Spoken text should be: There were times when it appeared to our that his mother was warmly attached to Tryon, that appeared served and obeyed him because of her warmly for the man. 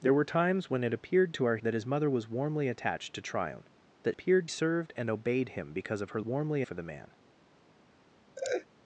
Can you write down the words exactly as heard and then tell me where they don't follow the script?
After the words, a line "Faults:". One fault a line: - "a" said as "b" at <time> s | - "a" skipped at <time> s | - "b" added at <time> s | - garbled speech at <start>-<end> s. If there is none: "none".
There were times when it appeared to our that his mother was warmly attached to Tryon, that appeared served and obeyed him because of her warmly for the man.
Faults:
none